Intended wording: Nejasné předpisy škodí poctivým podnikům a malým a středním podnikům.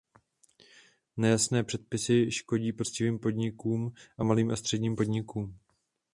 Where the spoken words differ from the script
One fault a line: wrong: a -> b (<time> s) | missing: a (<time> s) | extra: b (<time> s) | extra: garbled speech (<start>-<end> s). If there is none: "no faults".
no faults